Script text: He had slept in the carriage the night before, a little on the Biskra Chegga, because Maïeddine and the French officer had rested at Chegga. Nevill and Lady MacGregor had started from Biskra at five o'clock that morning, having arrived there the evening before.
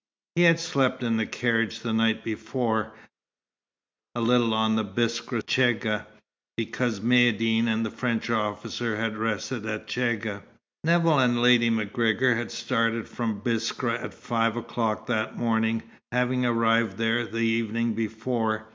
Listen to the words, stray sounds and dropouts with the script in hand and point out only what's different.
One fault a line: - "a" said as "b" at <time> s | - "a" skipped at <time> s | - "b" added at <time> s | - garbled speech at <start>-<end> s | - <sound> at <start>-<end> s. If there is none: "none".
none